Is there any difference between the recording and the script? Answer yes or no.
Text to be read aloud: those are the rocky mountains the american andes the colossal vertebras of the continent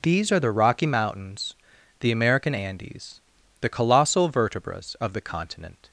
yes